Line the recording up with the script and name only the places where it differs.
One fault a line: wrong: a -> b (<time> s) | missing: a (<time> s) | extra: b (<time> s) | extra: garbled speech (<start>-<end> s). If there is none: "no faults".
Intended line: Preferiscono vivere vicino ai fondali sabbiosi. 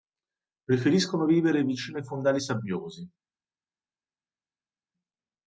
no faults